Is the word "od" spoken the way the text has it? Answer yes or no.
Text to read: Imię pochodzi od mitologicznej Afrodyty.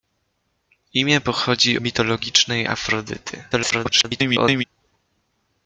no